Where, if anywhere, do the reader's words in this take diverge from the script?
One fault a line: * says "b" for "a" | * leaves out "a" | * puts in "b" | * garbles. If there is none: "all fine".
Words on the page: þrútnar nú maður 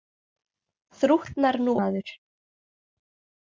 all fine